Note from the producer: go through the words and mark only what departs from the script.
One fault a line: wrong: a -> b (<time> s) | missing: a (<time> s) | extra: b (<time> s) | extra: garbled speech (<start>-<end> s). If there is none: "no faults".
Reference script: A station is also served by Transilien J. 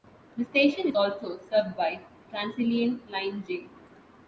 wrong: A -> The (0.3 s)
extra: line (3.1 s)